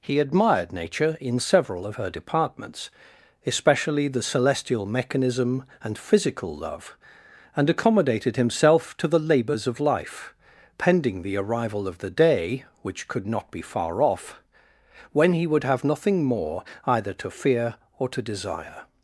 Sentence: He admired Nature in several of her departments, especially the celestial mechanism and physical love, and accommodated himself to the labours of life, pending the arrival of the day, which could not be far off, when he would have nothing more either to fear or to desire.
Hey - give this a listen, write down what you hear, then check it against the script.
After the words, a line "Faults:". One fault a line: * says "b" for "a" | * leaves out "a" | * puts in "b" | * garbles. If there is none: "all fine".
He admired Nature in several of her departments, especially the celestial mechanism and physical love, and accommodated himself to the labours of life, pending the arrival of the day, which could not be far off, when he would have nothing more either to fear or to desire.
Faults:
all fine